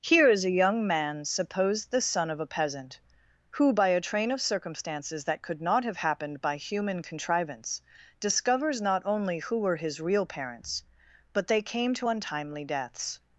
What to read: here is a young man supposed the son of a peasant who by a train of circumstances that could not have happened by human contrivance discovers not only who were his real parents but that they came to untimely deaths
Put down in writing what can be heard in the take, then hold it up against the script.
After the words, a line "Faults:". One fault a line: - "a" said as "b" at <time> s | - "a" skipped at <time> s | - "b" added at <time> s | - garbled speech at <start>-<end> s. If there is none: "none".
here is a young man supposed the son of a peasant who by a train of circumstances that could not have happened by human contrivance discovers not only who were his real parents but they came to untimely deaths
Faults:
- "that" skipped at 11.4 s